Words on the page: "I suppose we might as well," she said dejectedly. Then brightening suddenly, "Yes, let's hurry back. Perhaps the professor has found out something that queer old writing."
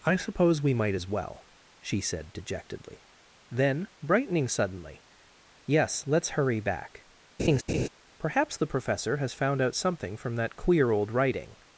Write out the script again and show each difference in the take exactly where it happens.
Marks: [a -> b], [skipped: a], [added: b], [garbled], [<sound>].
"I suppose we might as well," she said dejectedly. Then brightening suddenly, "Yes, let's hurry back. [laugh] Perhaps the professor has found out something [added: from] that queer old writing."